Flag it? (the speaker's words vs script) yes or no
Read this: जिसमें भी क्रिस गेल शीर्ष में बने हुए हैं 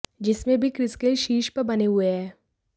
yes